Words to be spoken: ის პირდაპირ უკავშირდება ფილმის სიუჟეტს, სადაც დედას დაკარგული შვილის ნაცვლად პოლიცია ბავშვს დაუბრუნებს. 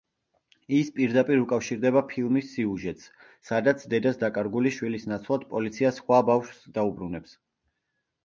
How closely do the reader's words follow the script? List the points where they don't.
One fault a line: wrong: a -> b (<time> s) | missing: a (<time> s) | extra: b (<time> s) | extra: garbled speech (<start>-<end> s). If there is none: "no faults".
extra: სხვა (6.0 s)